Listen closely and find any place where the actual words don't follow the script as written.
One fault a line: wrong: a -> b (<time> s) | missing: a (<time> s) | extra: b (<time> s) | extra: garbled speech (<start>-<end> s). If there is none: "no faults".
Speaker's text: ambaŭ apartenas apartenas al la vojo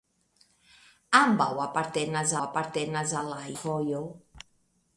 no faults